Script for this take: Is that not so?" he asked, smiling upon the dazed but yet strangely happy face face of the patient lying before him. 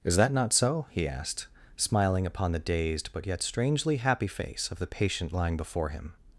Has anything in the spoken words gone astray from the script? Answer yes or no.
yes